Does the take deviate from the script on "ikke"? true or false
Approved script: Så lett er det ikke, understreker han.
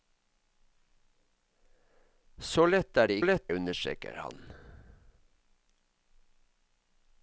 true